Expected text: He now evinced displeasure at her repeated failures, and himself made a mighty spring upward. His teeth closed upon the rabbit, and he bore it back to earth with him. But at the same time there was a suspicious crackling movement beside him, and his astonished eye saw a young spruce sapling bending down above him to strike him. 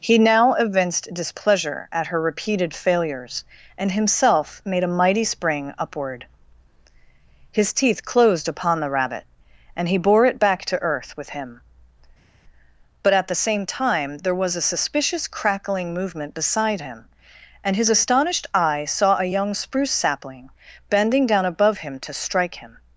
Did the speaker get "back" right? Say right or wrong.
right